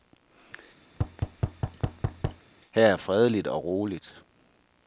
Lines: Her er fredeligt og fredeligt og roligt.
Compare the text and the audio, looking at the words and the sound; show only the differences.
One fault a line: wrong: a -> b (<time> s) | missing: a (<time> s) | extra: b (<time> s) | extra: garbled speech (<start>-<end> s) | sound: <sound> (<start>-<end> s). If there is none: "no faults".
sound: thud (0.9-2.5 s)
missing: fredeligt og (3.6 s)